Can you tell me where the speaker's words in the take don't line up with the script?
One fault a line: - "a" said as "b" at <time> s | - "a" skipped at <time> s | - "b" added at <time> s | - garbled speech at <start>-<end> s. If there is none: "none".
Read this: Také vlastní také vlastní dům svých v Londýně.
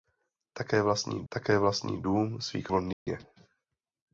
none